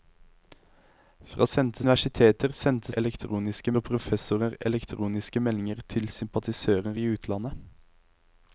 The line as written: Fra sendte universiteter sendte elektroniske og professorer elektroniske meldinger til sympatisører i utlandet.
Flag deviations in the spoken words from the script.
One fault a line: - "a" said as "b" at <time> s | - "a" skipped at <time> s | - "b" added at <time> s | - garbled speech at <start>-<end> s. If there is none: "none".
none